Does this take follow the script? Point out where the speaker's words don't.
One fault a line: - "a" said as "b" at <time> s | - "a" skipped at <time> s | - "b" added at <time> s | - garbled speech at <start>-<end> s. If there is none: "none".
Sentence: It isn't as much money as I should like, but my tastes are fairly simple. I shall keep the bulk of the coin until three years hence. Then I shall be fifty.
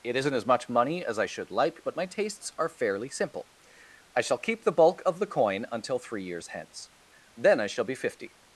none